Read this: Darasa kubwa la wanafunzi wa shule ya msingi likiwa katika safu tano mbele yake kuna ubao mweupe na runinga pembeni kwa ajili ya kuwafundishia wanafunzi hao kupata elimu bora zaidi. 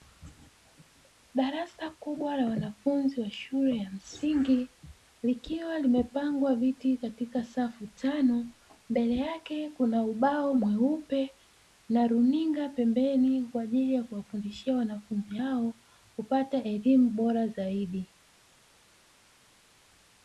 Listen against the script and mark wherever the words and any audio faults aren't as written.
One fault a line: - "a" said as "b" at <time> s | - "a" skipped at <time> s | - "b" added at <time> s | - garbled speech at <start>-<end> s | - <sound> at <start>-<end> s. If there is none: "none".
- "limepangwa viti" added at 5.8 s